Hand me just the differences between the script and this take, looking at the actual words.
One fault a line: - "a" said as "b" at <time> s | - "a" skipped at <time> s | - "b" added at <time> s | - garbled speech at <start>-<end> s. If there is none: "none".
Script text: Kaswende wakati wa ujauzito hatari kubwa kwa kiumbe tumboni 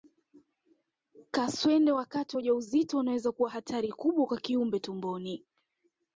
- "unaweza kuwa" added at 3.0 s